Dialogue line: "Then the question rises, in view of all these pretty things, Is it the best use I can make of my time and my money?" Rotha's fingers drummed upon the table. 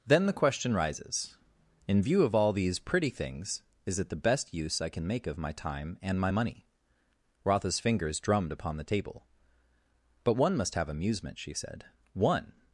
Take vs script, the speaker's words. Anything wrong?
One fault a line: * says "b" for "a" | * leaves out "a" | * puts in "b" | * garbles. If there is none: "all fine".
* puts in "But one must have amusement she said One"